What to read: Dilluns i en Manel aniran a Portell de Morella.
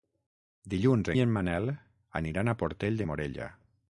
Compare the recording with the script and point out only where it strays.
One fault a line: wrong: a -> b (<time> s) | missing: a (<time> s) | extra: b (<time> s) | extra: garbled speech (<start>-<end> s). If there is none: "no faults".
no faults